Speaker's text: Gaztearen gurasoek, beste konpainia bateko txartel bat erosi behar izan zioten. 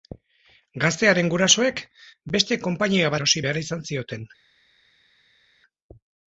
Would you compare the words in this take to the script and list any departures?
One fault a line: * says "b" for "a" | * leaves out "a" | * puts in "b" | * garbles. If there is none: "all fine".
* leaves out "bateko txartel bat"